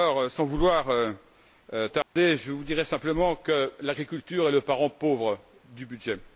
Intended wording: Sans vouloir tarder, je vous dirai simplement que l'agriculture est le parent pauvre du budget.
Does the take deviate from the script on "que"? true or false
false